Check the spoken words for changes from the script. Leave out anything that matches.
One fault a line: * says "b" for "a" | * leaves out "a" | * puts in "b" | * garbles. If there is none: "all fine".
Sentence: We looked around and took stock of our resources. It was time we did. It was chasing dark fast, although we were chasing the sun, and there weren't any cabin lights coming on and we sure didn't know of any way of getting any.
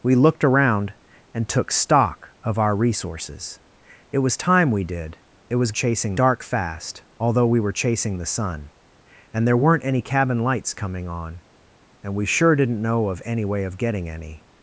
all fine